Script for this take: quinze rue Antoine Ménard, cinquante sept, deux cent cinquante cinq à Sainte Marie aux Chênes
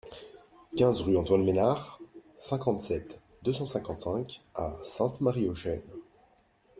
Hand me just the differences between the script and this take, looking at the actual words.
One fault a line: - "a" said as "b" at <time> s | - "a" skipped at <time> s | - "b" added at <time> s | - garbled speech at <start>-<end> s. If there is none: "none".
none